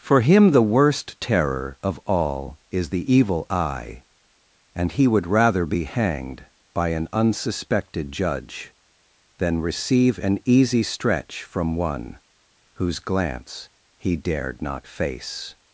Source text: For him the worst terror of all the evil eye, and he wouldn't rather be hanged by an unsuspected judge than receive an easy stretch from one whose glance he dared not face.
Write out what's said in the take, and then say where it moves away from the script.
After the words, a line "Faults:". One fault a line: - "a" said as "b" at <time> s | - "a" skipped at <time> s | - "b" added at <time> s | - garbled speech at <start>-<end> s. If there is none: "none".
For him the worst terror of all is the evil eye, and he would rather be hanged by an unsuspected judge than receive an easy stretch from one whose glance he dared not face.
Faults:
- "is" added at 2.7 s
- "wouldn't" said as "would" at 5.1 s